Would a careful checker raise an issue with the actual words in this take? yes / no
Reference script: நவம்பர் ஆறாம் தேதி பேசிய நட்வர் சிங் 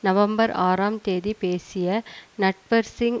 no